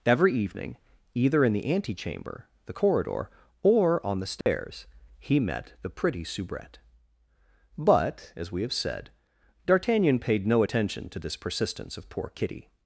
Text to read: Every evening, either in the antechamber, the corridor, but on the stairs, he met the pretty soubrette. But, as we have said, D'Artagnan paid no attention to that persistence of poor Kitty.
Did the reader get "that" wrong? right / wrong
wrong